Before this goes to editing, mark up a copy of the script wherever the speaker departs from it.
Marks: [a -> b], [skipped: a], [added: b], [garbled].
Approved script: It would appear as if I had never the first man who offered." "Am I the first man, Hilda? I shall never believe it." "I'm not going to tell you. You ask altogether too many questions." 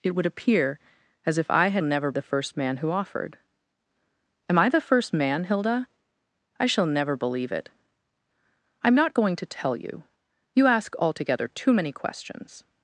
It would appear as if I had never the first man who offered." "Am I the first man, Hilda? I shall never believe it." "I'm not going to tell you. You ask altogether too many questions."